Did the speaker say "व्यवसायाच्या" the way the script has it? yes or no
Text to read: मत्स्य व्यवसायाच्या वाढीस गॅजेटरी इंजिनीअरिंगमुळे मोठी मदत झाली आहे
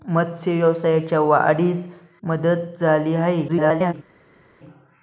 yes